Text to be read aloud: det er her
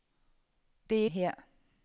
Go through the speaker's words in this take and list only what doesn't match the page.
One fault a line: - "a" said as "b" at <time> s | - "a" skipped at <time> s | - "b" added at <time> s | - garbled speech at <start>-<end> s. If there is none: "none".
none